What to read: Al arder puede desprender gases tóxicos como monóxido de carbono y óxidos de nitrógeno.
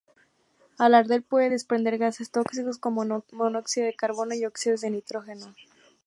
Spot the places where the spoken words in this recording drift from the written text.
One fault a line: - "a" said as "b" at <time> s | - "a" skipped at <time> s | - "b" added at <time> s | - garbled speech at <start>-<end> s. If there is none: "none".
none